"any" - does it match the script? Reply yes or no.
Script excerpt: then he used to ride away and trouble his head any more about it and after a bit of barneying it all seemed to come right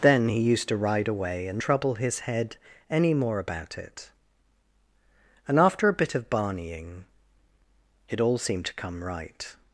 yes